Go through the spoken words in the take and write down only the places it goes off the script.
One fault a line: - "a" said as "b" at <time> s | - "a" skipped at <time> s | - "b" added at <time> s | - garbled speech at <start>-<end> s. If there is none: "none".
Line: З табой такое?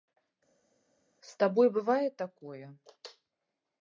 - "бывае" added at 1.8 s